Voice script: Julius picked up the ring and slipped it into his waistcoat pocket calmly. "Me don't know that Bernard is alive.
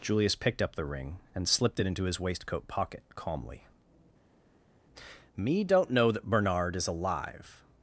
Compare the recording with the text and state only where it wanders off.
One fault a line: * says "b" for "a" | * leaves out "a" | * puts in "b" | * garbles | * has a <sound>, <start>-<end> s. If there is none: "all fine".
all fine